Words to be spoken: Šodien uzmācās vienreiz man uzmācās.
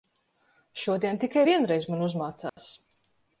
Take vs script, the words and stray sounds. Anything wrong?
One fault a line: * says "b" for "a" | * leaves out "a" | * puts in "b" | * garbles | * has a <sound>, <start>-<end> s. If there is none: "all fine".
* says "tikai" for "uzmācās"
* has a dropout, 2.5-2.6 s